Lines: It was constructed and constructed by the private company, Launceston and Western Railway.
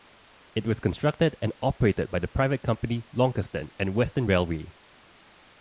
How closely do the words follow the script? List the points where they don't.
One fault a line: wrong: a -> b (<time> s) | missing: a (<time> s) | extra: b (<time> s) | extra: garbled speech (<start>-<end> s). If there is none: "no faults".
wrong: constructed -> operated (1.6 s)